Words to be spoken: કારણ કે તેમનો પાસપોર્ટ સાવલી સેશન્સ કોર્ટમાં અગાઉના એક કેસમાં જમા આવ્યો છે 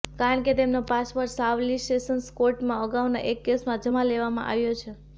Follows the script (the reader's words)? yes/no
no